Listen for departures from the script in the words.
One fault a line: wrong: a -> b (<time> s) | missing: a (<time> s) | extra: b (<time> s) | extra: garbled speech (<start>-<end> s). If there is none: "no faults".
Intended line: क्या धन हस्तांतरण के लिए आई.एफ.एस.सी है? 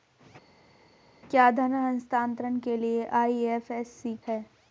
no faults